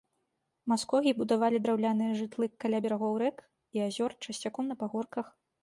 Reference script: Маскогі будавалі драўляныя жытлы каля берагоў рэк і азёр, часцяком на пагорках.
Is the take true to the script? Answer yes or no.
yes